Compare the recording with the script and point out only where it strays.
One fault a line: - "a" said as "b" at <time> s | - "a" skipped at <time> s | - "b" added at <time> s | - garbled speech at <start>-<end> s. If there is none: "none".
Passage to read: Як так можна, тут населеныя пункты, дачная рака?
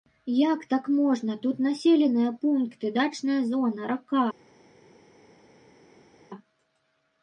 - "зона" added at 3.5 s